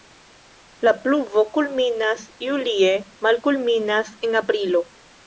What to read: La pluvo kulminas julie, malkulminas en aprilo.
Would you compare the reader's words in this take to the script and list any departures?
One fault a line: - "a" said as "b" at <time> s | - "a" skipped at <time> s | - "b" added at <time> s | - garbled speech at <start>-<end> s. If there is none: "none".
none